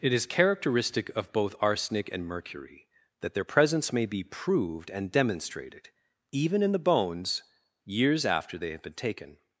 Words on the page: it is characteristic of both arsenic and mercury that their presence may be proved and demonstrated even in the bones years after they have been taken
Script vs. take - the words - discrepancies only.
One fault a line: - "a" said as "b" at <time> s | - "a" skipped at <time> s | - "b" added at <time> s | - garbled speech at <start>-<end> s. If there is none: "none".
none